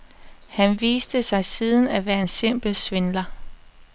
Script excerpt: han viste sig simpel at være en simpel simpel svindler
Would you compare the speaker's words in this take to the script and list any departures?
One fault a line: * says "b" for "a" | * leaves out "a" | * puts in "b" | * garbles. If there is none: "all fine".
* says "siden" for "simpel"
* leaves out "simpel"